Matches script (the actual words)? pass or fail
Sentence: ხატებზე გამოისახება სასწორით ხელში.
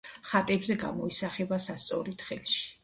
pass